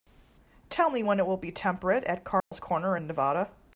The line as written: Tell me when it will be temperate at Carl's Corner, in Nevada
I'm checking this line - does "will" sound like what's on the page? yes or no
yes